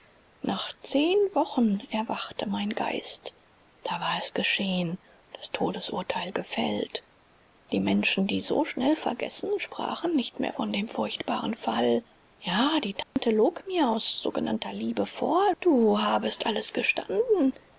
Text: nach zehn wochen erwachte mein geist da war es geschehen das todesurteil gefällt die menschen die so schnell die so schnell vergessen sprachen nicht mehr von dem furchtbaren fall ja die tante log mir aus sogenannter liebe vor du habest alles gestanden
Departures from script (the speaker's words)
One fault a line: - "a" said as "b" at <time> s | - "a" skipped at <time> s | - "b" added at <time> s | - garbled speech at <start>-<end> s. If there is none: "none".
- "die so schnell" skipped at 8.9 s